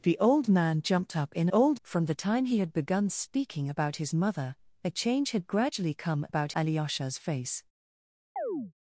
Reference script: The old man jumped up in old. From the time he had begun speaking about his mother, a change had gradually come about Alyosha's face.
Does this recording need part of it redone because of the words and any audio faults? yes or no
yes